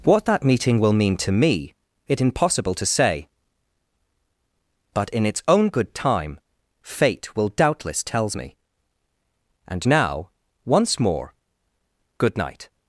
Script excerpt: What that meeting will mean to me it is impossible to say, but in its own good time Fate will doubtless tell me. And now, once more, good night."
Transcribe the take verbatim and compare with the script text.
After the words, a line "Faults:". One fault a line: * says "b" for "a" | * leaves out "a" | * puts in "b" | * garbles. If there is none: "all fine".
What that meeting will mean to me it impossible to say, but in its own good time Fate will doubtless tells me. And now, once more, good night."
Faults:
* leaves out "is"
* says "tells" for "tell"